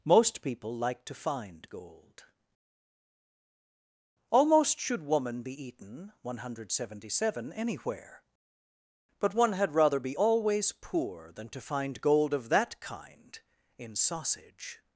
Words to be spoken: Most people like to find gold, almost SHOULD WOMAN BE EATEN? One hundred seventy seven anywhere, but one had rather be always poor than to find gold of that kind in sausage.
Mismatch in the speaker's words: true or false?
false